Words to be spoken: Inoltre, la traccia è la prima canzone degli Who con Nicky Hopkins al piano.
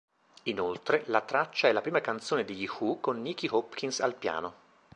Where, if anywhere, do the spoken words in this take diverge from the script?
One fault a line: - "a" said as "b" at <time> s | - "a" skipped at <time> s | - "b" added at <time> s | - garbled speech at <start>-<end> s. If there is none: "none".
none